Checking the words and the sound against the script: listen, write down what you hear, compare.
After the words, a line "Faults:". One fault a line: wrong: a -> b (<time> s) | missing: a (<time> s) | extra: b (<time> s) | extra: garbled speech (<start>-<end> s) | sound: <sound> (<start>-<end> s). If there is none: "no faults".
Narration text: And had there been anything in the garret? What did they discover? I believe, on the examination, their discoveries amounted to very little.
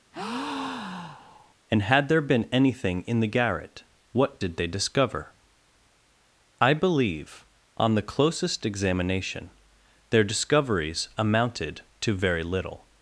And had there been anything in the garret? What did they discover? I believe, on the closest examination, their discoveries amounted to very little.
Faults:
sound: breath (0.1-1.5 s)
extra: closest (8.0 s)